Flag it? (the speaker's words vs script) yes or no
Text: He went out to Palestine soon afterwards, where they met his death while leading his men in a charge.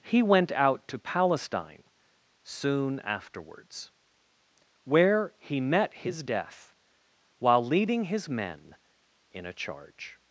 yes